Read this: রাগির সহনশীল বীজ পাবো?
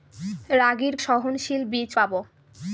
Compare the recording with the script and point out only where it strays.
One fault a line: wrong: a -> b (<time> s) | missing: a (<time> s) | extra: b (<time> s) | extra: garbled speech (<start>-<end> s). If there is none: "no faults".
no faults